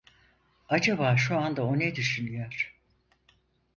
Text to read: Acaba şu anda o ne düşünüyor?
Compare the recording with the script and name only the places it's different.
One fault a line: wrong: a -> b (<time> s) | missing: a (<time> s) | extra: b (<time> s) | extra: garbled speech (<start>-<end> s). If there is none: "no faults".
no faults